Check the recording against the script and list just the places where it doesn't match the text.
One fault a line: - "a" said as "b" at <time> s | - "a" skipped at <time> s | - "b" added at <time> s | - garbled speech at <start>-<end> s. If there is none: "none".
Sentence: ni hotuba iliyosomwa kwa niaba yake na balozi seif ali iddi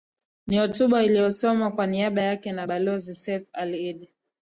none